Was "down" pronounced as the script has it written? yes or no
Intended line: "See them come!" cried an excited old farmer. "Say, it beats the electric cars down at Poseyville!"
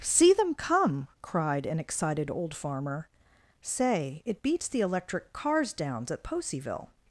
no